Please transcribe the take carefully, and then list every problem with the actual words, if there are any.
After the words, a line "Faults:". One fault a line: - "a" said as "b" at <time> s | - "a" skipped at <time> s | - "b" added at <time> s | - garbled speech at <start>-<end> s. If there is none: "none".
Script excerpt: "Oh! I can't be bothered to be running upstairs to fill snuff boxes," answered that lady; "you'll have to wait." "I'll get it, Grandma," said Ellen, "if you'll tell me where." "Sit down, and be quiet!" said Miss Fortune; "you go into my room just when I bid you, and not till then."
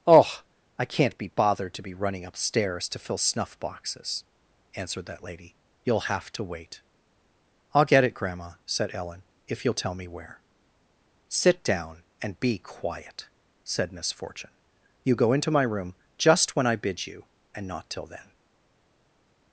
"Oh! I can't be bothered to be running upstairs to fill snuff boxes," answered that lady; "you'll have to wait." "I'll get it, Grandma," said Ellen, "if you'll tell me where." "Sit down, and be quiet!" said Miss Fortune; "you go into my room just when I bid you, and not till then."
Faults:
none